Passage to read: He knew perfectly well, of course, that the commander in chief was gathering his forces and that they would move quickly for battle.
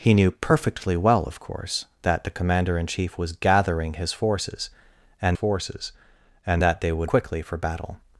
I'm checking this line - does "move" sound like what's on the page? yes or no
no